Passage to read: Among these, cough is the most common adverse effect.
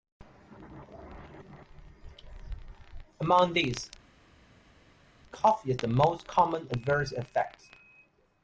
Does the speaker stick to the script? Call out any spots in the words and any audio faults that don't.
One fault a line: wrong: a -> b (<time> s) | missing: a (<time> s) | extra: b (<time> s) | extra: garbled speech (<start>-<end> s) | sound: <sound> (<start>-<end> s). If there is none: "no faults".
no faults